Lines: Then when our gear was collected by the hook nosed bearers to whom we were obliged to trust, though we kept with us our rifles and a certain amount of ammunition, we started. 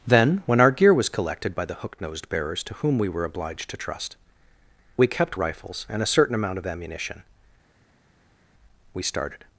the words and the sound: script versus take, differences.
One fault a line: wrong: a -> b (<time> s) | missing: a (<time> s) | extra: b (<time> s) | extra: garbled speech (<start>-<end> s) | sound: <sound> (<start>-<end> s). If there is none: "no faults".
missing: though (4.2 s)
missing: with us our (5.4 s)